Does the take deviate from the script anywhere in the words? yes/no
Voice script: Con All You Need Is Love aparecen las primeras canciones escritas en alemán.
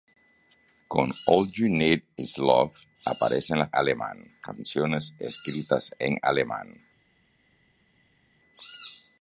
yes